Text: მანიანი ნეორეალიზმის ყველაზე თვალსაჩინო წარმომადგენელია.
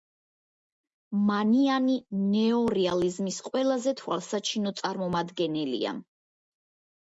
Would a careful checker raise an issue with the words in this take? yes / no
no